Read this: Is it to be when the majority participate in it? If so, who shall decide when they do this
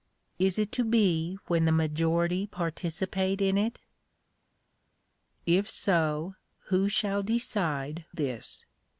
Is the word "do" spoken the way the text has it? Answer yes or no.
no